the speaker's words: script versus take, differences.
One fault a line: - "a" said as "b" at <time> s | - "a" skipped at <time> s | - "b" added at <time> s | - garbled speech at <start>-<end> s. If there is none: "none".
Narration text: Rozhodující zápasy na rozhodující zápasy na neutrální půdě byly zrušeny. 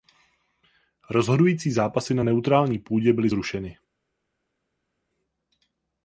- "rozhodující zápasy na" skipped at 2.2 s